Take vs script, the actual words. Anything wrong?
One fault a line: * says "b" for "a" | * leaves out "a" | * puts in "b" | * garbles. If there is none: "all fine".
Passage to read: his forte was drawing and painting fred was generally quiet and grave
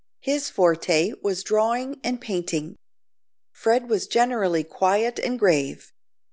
all fine